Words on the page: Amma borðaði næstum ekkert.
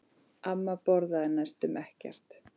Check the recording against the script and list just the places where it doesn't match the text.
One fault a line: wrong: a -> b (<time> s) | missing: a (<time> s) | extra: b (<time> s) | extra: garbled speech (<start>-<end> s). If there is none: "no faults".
no faults